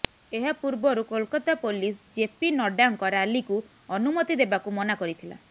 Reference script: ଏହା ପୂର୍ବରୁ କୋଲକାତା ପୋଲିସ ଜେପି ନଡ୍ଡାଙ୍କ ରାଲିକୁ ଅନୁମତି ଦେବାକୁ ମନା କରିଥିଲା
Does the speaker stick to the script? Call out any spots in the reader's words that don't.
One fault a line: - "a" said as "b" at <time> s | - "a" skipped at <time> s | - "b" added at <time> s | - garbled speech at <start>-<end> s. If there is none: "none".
none